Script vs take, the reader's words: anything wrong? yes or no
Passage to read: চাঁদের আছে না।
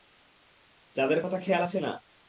yes